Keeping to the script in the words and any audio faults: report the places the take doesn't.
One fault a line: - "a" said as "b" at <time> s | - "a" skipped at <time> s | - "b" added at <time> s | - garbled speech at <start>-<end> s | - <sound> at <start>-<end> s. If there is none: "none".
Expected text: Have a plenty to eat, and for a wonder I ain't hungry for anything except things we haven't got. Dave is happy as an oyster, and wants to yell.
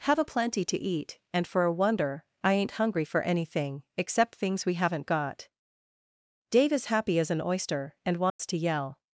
- dropout at 8.3-8.4 s